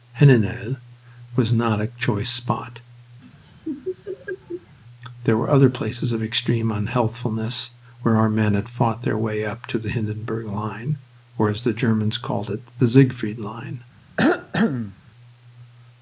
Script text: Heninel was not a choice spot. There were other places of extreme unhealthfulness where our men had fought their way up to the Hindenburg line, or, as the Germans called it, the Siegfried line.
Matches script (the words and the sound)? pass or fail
fail